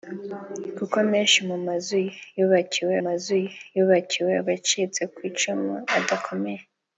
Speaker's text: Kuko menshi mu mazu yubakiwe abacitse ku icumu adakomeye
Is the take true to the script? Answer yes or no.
no